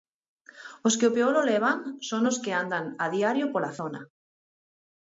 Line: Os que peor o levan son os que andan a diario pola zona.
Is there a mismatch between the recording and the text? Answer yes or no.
no